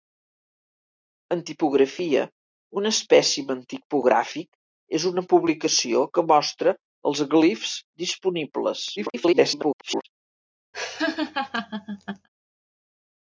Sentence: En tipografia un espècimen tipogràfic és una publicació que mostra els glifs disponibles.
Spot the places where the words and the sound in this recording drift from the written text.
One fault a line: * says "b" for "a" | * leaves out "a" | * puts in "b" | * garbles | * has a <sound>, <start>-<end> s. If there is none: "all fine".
* garbles
* has a laugh, 10.7-12.3 s